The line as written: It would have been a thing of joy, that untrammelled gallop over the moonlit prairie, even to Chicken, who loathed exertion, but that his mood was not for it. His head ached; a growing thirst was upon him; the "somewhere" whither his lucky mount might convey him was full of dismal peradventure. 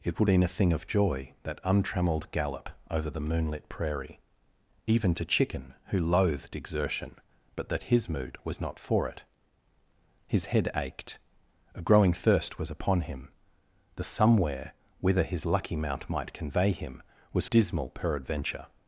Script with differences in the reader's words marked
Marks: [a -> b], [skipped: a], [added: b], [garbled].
It would [skipped: have] been a thing of joy, that untrammelled gallop over the moonlit prairie, even to Chicken, who loathed exertion, but that his mood was not for it. His head ached; a growing thirst was upon him; the "somewhere" whither his lucky mount might convey him was [skipped: full of] dismal peradventure.